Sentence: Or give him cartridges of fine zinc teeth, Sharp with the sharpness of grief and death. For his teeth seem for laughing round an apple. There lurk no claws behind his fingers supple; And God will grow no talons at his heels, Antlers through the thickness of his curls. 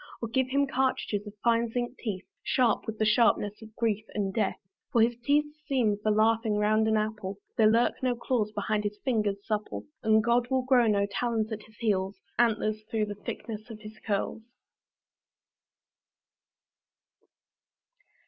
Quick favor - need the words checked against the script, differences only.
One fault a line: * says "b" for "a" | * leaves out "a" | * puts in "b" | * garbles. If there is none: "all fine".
all fine